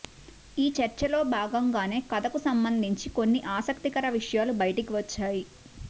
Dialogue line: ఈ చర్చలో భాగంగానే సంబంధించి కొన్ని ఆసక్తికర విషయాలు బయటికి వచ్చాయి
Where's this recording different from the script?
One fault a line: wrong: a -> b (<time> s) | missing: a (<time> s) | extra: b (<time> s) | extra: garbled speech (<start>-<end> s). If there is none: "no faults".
extra: కథకు (2.1 s)